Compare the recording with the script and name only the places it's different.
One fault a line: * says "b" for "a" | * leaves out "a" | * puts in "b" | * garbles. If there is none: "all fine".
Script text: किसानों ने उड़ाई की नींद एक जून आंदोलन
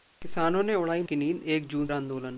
all fine